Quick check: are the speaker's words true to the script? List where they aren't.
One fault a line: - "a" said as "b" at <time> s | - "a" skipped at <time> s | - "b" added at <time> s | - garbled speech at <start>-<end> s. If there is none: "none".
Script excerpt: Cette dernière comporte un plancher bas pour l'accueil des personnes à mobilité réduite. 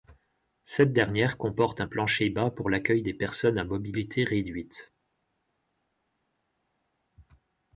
none